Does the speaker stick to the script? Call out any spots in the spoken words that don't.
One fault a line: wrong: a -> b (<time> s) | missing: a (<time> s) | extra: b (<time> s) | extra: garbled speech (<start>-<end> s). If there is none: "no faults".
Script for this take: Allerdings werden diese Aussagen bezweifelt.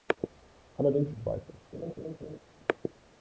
missing: werden diese Aussagen (1.1 s)